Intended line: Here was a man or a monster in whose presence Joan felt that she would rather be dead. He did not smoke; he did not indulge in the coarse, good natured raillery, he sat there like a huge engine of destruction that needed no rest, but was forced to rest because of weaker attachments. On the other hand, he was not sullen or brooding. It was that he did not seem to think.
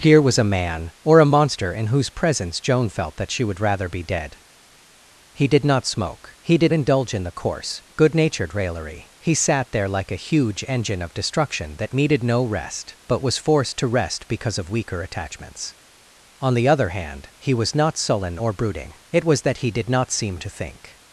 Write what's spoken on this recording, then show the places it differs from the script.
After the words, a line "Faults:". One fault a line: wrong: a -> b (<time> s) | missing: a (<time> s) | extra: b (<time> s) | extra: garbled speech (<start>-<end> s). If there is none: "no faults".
Here was a man or a monster in whose presence Joan felt that she would rather be dead. He did not smoke; he did indulge in the coarse, good natured raillery, he sat there like a huge engine of destruction that needed no rest, but was forced to rest because of weaker attachments. On the other hand, he was not sullen or brooding. It was that he did not seem to think.
Faults:
missing: not (6.7 s)